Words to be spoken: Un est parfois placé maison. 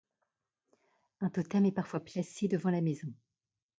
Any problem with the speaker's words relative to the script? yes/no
yes